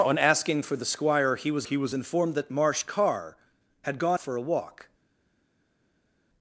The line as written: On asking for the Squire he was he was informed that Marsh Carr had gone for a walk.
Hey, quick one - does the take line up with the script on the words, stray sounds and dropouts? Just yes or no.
yes